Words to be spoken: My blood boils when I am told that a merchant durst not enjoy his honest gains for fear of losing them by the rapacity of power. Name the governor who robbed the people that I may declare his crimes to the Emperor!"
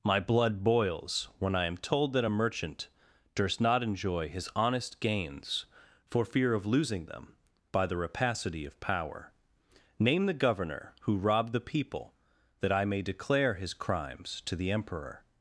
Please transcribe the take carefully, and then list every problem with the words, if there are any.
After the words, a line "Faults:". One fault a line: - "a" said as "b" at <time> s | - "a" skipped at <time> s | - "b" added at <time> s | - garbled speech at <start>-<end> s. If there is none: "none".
My blood boils when I am told that a merchant durst not enjoy his honest gains for fear of losing them by the rapacity of power. Name the governor who robbed the people that I may declare his crimes to the Emperor!"
Faults:
none